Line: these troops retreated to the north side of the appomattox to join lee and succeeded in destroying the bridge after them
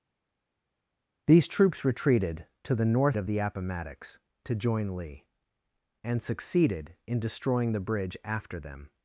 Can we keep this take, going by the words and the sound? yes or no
no